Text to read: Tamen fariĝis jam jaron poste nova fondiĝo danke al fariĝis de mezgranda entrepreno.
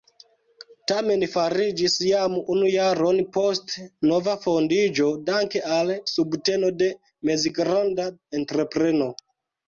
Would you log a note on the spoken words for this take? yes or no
yes